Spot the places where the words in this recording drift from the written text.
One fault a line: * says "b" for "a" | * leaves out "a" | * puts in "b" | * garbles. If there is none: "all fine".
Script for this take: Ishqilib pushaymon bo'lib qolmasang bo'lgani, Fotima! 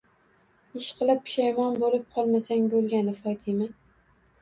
all fine